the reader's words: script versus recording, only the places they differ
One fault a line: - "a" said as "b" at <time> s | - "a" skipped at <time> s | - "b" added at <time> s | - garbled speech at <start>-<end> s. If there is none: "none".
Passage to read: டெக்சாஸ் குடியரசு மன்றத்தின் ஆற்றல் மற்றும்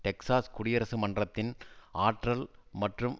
none